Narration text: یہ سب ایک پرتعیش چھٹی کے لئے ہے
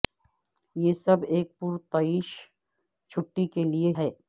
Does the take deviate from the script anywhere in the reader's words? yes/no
no